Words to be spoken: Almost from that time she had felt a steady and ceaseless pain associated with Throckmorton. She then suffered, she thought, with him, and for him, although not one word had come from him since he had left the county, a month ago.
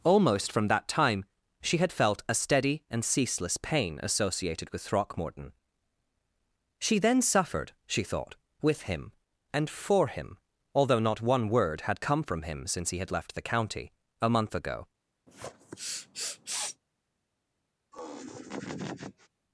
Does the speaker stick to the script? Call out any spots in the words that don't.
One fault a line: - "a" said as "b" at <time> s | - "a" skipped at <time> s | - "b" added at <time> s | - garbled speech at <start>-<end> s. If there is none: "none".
none